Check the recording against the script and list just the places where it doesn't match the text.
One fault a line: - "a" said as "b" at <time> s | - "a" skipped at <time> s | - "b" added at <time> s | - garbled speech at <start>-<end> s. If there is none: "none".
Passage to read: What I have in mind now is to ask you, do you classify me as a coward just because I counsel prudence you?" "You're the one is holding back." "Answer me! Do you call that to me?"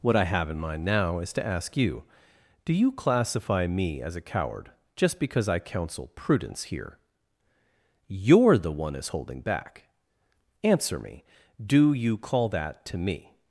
- "you" said as "here" at 6.7 s